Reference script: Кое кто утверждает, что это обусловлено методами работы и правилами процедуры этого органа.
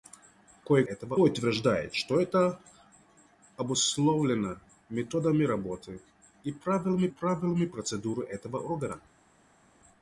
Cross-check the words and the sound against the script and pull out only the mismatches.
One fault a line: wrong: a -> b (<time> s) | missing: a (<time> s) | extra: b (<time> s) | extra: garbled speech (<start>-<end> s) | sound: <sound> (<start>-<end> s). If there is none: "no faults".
wrong: кто -> этого (0.8 s)
extra: правилами (7.1 s)